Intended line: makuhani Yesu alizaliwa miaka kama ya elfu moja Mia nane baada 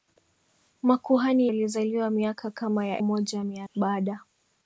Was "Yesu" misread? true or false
true